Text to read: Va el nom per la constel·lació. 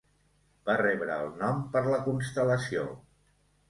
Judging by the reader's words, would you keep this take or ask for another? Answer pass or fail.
fail